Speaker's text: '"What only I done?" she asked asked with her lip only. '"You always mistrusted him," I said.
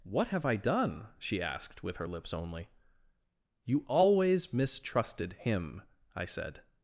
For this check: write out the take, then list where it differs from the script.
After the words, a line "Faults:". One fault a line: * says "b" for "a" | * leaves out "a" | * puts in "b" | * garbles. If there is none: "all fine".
'"What have I done?" she asked with her lips only. '"You always mistrusted him," I said.
Faults:
* says "have" for "only"
* leaves out "asked"
* says "lips" for "lip"